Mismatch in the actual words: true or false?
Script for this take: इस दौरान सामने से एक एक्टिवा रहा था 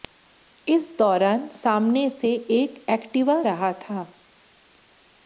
false